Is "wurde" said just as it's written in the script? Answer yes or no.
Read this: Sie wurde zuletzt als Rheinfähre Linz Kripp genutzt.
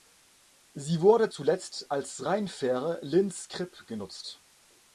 yes